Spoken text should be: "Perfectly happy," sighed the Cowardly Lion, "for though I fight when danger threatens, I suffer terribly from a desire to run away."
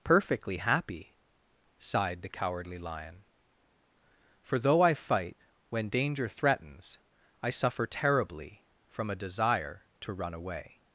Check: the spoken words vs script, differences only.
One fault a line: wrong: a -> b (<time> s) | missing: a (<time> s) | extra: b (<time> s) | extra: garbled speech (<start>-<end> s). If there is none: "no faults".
no faults